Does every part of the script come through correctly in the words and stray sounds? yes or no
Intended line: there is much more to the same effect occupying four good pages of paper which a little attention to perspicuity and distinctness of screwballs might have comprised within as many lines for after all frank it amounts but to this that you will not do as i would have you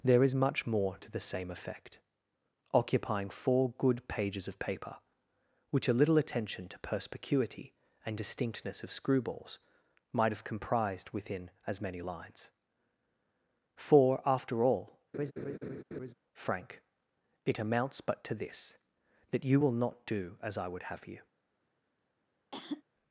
no